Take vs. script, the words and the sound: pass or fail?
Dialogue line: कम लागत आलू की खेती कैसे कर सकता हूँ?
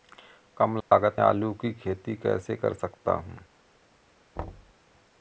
fail